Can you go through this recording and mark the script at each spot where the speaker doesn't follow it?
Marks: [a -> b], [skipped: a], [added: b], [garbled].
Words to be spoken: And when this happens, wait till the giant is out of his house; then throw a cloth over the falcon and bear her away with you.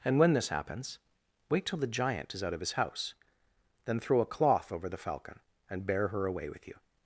And when this happens, wait till the giant is out of his house; then throw a cloth over the falcon and bear her away with you.